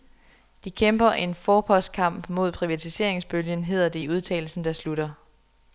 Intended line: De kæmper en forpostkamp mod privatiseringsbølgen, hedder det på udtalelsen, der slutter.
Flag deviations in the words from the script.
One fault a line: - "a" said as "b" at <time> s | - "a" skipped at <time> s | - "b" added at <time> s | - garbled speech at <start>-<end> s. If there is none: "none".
- "på" said as "i" at 4.0 s